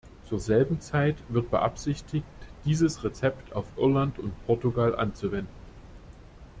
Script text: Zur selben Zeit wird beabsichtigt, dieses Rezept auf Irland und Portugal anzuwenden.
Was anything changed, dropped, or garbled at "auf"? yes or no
no